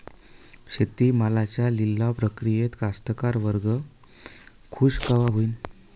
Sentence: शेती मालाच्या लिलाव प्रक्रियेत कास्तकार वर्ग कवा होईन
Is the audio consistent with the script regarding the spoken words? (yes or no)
no